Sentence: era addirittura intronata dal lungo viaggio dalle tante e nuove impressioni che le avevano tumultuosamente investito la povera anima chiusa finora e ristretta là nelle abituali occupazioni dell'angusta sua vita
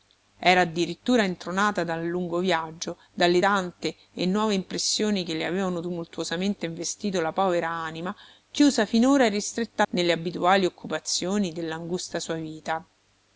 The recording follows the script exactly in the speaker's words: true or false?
false